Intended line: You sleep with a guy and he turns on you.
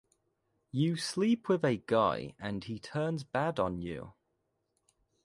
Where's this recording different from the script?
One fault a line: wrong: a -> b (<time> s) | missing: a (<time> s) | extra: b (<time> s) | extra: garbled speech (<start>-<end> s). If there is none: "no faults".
extra: bad (3.2 s)